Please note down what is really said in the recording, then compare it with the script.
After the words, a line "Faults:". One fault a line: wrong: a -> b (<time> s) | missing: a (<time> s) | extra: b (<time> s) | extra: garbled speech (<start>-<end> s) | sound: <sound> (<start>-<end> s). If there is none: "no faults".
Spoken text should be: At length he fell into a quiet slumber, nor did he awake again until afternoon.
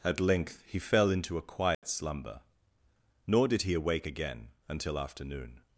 At length he fell into a quiet slumber, nor did he awake again until afternoon.
Faults:
sound: dropout (1.7-1.8 s)